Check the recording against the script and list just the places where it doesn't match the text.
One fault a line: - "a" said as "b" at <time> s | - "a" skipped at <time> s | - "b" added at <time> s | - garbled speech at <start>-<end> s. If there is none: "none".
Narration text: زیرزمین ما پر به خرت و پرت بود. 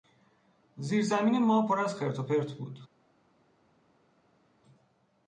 - "به" said as "از" at 1.8 s